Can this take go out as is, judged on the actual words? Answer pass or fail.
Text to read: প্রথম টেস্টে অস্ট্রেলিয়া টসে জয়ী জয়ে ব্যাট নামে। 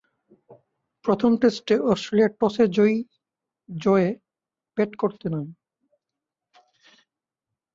fail